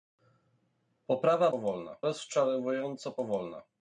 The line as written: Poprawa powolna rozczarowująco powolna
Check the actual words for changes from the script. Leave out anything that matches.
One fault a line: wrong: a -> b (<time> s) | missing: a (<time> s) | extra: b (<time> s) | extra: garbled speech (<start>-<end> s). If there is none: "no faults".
no faults